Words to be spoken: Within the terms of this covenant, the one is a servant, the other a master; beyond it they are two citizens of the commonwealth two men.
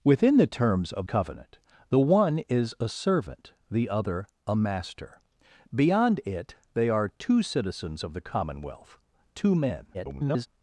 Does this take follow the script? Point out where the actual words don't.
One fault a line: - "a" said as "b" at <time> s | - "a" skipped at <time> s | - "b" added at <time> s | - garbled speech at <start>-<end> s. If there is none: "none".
- "this" skipped at 1.1 s
- garbled speech at 9.9-10.5 s